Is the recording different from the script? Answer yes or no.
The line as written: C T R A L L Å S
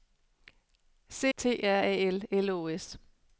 no